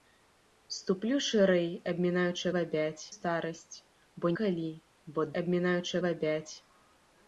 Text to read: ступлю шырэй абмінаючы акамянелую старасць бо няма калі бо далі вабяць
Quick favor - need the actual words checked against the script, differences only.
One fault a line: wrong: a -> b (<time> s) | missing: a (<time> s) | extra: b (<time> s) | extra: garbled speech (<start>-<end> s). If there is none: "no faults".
wrong: акамянелую -> вабяць (2.6 s)
missing: няма (4.3 s)
wrong: далі -> абмінаючы (5.4 s)